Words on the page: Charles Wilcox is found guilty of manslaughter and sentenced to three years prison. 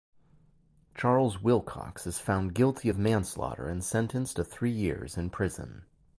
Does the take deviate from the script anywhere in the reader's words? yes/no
yes